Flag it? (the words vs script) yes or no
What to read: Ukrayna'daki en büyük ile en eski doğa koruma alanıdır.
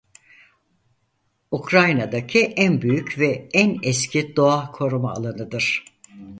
yes